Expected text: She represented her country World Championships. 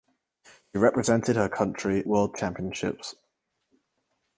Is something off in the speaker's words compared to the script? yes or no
no